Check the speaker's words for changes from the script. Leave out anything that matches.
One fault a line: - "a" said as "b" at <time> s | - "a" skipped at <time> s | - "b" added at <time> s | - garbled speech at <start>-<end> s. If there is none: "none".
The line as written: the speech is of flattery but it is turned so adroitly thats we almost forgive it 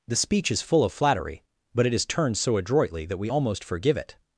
- "full" added at 0.6 s
- "thats" said as "that" at 3.0 s